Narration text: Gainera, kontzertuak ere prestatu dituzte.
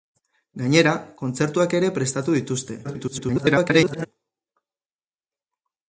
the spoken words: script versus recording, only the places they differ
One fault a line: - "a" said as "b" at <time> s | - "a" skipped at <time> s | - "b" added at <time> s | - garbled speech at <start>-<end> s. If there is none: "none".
- garbled speech at 2.8-4.1 s